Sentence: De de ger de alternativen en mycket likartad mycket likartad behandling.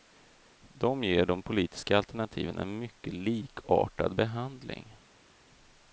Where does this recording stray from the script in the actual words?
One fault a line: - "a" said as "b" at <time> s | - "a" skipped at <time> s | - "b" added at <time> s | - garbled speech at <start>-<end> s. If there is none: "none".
- "de" skipped at 1.0 s
- "politiska" added at 1.4 s
- "mycket likartad" skipped at 4.2 s